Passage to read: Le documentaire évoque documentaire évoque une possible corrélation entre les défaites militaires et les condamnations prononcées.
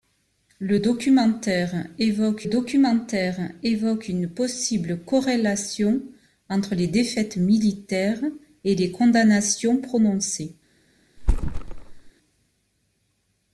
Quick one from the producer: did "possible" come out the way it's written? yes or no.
yes